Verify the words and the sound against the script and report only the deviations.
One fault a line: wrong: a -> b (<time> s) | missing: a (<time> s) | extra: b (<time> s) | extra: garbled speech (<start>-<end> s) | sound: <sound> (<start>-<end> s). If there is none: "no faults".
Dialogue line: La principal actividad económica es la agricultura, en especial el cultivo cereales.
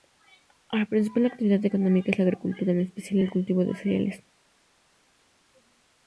extra: de (3.6 s)